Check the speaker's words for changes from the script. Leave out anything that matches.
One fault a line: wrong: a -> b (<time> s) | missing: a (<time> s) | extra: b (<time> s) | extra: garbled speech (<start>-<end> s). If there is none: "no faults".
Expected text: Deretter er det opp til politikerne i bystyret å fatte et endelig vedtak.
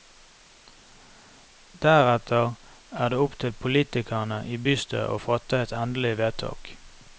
no faults